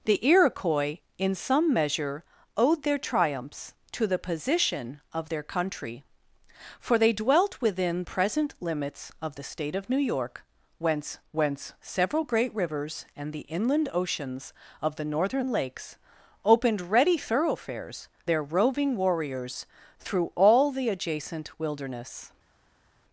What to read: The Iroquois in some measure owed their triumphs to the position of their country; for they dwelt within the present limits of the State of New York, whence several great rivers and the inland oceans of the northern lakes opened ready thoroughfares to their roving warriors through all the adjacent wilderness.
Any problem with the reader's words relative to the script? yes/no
yes